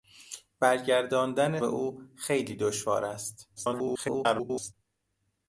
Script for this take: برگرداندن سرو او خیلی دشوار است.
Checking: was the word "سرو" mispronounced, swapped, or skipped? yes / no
yes